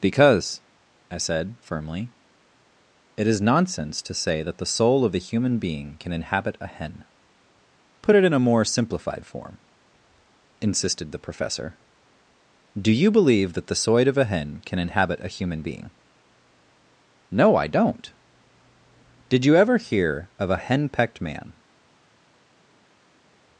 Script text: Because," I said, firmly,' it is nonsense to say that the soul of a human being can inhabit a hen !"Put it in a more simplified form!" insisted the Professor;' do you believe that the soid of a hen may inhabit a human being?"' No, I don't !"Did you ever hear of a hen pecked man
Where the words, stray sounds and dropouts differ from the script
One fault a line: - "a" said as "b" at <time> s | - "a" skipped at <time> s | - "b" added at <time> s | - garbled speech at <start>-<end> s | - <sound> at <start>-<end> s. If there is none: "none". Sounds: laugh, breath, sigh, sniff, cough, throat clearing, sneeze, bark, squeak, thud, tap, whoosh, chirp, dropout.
- "may" said as "can" at 14.6 s